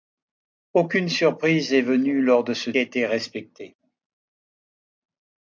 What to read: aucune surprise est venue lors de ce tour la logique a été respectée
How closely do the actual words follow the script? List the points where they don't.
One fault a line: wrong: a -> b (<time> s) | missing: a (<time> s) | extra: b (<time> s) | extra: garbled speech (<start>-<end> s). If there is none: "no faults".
missing: tour la logique (2.7 s)